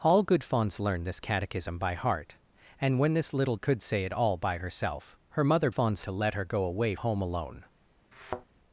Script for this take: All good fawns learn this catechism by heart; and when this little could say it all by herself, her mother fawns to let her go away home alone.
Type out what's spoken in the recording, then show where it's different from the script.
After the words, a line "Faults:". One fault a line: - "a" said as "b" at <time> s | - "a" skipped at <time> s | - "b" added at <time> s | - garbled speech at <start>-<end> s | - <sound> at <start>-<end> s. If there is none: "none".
All good fawns learn this catechism by heart; and when this little could say it all by herself, her mother fawns to let her go away home alone.
Faults:
- thud at 8.1-8.5 s